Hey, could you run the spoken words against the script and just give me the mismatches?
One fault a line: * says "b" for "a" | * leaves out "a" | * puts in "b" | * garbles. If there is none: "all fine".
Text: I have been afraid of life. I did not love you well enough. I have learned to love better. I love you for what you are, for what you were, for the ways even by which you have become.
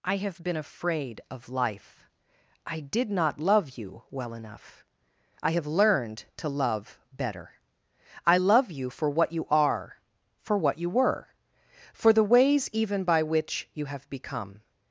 all fine